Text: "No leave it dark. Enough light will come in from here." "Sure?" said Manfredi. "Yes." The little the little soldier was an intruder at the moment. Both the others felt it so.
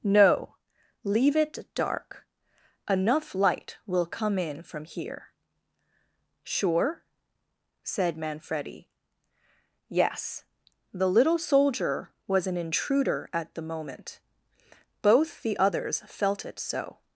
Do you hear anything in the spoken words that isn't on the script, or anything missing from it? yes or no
yes